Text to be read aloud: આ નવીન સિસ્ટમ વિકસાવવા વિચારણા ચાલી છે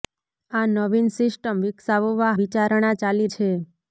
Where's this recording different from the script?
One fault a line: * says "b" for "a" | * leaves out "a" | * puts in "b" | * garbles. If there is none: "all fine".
all fine